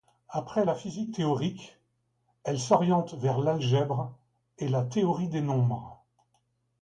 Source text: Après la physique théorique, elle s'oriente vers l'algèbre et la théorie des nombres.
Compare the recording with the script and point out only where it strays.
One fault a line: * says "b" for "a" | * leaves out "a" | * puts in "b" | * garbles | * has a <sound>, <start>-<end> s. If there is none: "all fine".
all fine